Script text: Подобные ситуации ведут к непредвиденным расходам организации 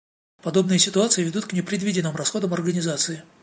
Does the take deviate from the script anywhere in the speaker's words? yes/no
no